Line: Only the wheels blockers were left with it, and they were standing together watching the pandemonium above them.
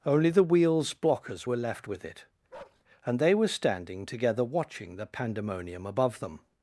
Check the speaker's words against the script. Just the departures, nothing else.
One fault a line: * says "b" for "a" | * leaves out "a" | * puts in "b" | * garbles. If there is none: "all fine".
all fine